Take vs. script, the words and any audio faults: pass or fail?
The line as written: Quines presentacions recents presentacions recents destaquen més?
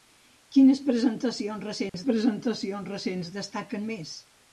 fail